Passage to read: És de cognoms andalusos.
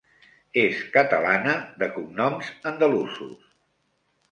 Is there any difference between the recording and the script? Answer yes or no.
yes